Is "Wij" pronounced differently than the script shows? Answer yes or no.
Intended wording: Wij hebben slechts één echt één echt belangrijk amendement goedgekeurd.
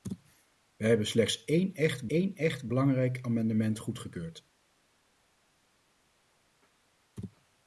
no